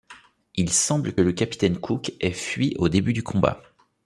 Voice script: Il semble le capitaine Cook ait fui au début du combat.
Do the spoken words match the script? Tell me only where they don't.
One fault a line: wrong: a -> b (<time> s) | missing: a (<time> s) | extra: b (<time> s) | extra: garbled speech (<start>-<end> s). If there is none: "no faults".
no faults